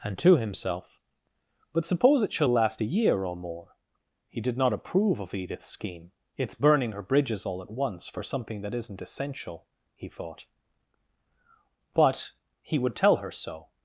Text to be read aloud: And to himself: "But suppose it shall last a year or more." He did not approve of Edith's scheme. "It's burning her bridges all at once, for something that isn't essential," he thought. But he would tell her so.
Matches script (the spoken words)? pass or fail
pass